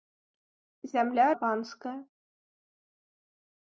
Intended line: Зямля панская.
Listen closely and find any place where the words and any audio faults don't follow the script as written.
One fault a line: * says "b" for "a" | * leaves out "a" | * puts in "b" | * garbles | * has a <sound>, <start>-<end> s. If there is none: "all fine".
all fine